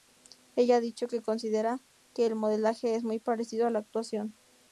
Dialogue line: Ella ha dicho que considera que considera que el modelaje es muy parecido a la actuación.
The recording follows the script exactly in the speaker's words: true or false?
false